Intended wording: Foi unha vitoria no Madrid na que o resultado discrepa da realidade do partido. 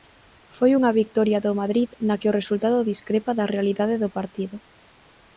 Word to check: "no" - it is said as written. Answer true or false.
false